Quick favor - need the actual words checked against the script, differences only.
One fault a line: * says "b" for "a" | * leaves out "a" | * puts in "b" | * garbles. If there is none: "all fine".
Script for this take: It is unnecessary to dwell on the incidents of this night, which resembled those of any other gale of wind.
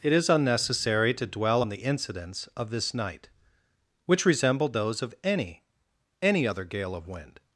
* puts in "any"